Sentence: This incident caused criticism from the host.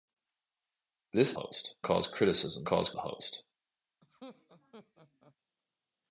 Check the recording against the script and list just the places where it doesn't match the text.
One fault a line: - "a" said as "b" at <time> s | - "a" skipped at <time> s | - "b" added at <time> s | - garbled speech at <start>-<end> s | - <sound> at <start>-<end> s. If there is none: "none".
- "incident" said as "host" at 1.3 s
- "from" said as "caused" at 2.7 s
- laugh at 4.0-5.4 s